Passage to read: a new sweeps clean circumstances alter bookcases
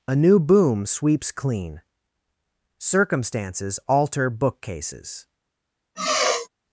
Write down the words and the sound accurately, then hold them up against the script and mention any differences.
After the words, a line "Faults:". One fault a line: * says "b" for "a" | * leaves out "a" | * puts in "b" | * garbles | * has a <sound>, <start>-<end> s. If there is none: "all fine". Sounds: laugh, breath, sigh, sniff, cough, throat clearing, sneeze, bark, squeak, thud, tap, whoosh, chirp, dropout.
a new boom sweeps clean circumstances alter bookcases
Faults:
* puts in "boom"
* has a sigh, 5.9-6.5 s